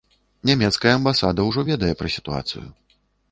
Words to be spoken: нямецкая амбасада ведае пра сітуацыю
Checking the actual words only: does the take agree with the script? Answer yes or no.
no